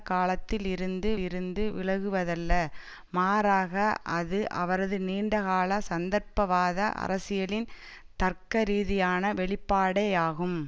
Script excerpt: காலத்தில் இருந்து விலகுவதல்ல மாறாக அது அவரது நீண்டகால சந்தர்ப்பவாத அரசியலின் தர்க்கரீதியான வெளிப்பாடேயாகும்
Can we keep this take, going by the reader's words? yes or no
no